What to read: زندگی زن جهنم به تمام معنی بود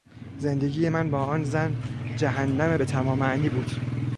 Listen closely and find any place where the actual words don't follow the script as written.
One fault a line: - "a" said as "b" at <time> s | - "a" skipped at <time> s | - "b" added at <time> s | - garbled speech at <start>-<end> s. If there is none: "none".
- "من با آن" added at 0.9 s